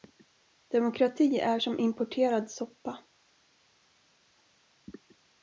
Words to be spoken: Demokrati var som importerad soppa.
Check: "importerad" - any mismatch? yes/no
no